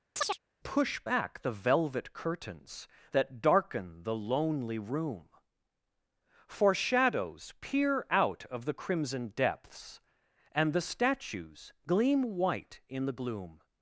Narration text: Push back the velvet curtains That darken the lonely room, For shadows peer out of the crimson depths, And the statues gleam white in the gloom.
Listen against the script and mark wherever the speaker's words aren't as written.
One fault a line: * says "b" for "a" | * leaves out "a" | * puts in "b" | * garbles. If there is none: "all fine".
all fine